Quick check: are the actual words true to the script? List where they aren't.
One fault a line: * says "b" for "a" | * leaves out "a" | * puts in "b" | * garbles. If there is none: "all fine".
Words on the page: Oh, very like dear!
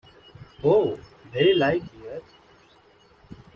all fine